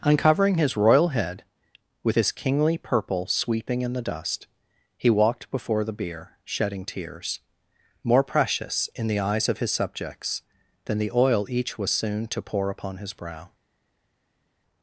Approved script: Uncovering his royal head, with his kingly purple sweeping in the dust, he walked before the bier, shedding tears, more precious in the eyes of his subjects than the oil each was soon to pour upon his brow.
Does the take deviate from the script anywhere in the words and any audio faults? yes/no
no